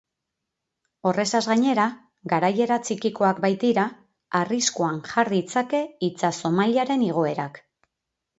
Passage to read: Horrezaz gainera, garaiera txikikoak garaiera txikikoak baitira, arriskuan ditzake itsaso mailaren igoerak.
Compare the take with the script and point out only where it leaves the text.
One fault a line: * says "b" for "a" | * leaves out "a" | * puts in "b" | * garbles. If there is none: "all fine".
* leaves out "garaiera txikikoak"
* puts in "jar"